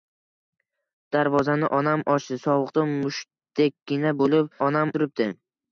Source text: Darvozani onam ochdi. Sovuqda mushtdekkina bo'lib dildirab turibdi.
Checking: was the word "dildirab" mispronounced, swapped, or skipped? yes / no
yes